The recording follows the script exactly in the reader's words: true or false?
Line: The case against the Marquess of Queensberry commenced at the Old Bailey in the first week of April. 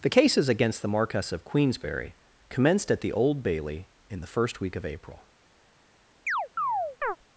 false